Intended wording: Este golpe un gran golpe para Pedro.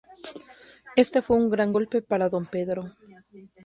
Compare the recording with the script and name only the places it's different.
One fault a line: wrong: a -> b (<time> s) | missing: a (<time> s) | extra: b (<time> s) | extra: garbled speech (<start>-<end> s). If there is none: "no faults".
wrong: golpe -> fue (1.2 s)
extra: Don (2.3 s)